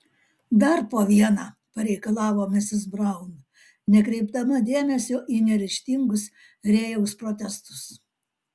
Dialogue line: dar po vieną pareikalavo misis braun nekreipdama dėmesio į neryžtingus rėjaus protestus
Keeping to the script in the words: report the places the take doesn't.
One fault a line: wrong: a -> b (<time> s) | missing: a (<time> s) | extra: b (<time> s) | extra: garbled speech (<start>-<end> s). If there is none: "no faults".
no faults